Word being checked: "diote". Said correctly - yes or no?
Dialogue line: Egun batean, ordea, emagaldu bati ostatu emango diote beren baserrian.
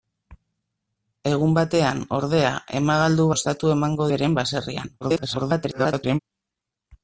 no